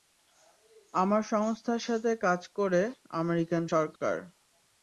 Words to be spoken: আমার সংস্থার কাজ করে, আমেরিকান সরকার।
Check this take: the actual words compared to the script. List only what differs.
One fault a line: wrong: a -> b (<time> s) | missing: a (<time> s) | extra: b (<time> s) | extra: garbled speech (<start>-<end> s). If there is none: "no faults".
extra: সাথে (1.8 s)